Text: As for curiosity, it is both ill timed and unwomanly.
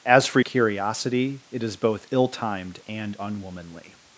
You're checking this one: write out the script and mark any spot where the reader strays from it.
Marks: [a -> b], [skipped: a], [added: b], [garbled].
As for curiosity, it is both ill timed and unwomanly.